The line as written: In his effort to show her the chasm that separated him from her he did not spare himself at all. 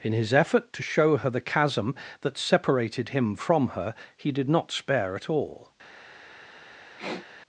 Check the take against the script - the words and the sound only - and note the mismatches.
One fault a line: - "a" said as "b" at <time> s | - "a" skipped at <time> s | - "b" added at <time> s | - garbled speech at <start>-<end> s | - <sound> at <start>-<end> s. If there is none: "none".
- "himself" skipped at 5.1 s
- sniff at 7.0-7.3 s